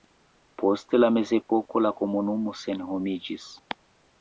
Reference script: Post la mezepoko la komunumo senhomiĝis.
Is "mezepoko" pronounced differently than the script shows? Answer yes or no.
no